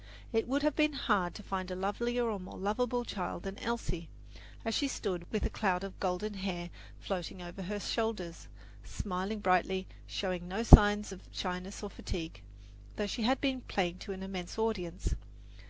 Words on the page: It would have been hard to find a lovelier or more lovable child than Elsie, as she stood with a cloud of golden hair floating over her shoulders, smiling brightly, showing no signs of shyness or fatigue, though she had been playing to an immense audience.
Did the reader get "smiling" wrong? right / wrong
right